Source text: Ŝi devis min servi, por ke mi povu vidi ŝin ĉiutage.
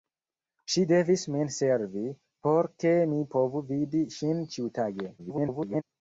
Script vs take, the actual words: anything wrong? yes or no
yes